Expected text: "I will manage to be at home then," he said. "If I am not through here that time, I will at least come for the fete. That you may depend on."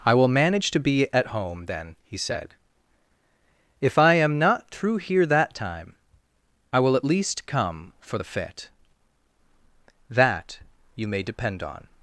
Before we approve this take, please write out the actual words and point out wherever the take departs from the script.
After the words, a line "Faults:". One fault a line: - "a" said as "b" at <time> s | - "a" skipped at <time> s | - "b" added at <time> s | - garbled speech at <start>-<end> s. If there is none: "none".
"I will manage to be at home then," he said. "If I am not through here that time, I will at least come for the fete. That you may depend on."
Faults:
none